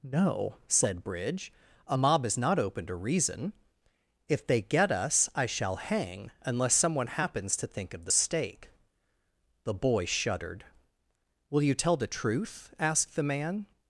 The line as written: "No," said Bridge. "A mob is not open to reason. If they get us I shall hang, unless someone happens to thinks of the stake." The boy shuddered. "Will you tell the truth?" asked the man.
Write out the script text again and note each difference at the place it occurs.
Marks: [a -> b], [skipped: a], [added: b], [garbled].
"No," said Bridge. "A mob is not open to reason. If they get us I shall hang, unless someone happens to [thinks -> think] of the stake." The boy shuddered. "Will you tell the truth?" asked the man.